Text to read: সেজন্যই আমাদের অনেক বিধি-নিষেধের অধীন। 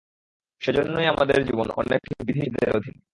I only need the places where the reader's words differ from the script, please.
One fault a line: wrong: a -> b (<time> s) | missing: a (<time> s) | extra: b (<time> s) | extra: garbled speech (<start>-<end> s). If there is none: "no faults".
extra: জীবন (1.4 s)